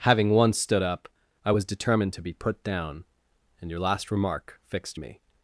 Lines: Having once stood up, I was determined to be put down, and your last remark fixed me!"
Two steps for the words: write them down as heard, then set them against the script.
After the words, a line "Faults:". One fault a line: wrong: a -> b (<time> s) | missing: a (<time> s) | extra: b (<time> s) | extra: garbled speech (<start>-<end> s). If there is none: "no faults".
Having once stood up, I was determined to be put down, and your last remark fixed me!"
Faults:
no faults